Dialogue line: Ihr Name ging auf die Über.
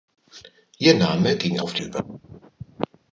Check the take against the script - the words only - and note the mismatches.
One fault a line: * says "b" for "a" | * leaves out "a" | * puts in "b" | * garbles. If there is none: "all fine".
all fine